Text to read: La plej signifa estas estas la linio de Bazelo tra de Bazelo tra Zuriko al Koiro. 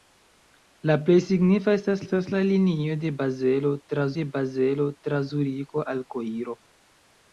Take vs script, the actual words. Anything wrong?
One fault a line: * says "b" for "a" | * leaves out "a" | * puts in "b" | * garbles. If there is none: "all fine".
all fine